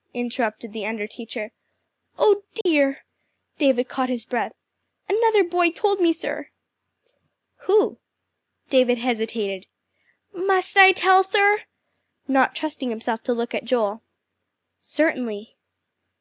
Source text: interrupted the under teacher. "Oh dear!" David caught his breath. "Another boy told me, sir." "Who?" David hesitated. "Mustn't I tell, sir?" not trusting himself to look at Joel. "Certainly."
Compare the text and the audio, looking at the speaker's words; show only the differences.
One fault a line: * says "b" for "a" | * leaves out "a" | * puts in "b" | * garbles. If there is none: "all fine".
* says "Must" for "Mustn't"